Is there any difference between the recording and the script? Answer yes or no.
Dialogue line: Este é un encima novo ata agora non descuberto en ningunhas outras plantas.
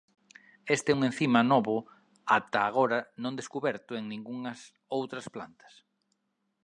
no